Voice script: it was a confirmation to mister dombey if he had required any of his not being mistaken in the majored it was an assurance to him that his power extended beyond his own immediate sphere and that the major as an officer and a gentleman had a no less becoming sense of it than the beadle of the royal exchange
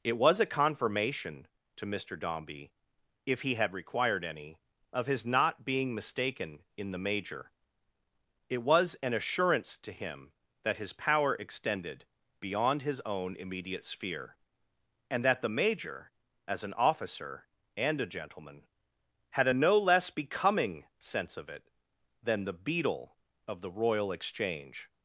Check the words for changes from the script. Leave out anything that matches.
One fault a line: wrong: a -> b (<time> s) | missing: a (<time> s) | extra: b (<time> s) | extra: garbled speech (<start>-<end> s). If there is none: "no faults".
wrong: majored -> major (7.0 s)